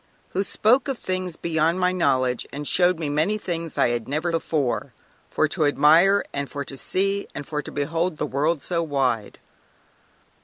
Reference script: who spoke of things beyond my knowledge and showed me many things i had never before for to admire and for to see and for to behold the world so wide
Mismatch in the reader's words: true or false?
false